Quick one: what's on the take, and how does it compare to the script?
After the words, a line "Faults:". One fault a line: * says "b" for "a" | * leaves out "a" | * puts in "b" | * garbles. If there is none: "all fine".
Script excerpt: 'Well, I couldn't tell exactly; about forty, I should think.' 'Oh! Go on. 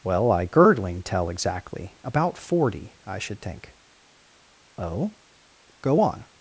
'Well, I girdling tell exactly; about forty, I should think.' 'Oh! Go on.
Faults:
* says "girdling" for "couldn't"